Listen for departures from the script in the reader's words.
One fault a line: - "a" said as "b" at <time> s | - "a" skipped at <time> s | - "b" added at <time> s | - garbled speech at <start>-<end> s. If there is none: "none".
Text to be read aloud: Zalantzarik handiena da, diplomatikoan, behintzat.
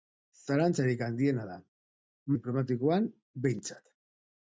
none